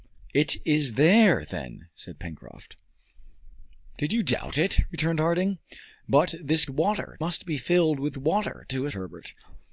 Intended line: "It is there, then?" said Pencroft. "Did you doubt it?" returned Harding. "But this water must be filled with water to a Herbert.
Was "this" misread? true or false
false